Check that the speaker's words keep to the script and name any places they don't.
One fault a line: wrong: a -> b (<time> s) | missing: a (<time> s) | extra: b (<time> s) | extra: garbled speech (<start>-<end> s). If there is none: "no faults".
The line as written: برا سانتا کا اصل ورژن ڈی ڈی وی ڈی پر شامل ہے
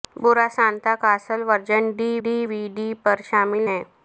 no faults